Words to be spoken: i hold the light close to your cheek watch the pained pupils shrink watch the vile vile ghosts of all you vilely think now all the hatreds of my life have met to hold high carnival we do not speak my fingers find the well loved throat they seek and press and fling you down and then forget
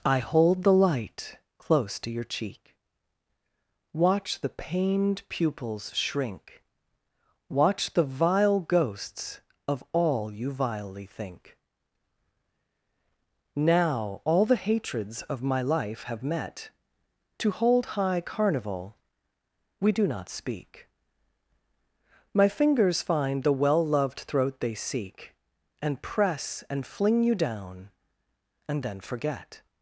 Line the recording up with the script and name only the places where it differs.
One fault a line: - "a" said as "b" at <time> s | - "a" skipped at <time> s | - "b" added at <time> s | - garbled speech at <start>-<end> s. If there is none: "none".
- "vile" skipped at 8.6 s